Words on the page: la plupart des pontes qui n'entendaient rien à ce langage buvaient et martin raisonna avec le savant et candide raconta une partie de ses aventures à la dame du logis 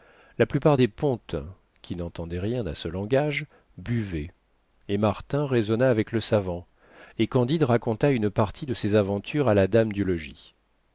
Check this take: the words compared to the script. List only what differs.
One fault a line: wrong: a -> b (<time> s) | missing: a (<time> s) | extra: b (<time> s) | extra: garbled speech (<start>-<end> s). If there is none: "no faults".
no faults